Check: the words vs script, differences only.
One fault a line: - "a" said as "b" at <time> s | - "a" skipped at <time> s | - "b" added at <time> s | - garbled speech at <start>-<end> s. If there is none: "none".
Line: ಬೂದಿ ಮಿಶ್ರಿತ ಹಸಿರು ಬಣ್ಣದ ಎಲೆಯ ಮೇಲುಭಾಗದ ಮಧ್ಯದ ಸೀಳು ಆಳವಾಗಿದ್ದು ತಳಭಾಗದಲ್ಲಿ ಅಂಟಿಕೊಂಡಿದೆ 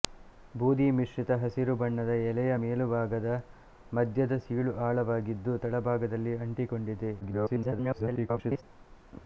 - garbled speech at 7.2-8.6 s